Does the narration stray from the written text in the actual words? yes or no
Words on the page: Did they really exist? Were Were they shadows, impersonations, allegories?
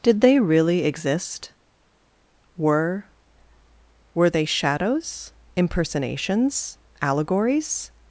no